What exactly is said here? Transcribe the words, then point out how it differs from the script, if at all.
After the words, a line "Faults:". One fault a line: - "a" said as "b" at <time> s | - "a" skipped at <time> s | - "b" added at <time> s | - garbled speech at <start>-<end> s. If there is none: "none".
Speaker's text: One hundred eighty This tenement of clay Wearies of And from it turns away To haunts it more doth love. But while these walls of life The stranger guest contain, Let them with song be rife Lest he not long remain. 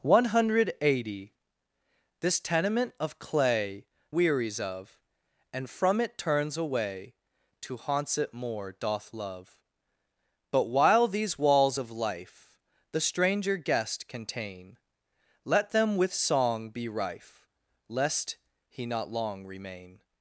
One hundred eighty This tenement of clay Wearies of And from it turns away To haunts it more doth love. But while these walls of life The stranger guest contain, Let them with song be rife Lest he not long remain.
Faults:
none